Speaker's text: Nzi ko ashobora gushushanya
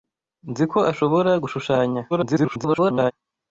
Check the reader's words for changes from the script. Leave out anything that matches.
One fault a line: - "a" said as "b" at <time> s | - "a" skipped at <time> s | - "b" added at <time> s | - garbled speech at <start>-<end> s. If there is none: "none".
- garbled speech at 2.1-3.1 s